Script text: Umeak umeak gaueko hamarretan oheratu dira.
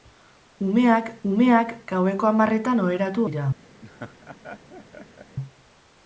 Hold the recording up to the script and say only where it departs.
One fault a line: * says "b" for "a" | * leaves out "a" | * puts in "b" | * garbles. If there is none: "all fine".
all fine